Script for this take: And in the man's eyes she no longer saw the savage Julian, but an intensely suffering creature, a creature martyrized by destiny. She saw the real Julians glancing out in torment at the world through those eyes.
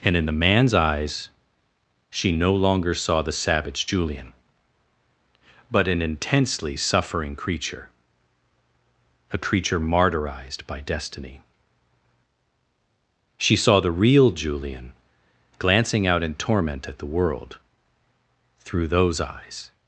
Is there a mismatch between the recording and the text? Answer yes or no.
yes